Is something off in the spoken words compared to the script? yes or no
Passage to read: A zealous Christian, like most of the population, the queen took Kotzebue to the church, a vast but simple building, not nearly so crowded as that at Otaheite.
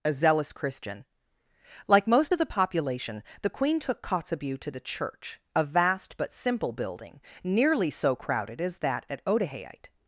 yes